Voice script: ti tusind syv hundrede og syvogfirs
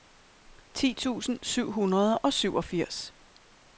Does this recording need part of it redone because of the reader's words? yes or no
no